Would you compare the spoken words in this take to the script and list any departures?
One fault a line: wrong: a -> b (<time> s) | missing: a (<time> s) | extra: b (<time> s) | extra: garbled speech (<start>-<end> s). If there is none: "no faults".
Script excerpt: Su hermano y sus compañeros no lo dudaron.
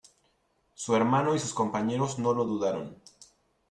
no faults